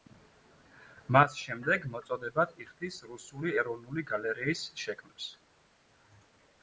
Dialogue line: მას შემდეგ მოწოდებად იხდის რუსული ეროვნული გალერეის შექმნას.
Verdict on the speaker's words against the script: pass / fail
pass